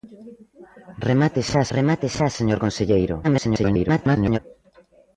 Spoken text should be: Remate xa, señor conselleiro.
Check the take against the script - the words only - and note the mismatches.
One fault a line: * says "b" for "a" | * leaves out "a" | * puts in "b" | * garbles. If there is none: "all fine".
* puts in "remate xa"
* garbles